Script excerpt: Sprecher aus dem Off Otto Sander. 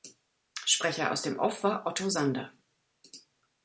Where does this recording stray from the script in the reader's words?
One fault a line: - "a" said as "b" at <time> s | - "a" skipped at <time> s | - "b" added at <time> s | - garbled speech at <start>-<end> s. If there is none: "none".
- "war" added at 1.6 s